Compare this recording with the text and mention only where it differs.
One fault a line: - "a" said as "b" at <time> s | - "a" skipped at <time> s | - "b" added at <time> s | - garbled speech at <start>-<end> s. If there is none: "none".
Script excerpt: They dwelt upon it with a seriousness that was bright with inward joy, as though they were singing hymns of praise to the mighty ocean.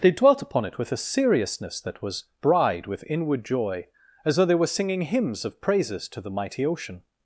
- "bright" said as "bride" at 2.4 s
- "praise" said as "praises" at 5.6 s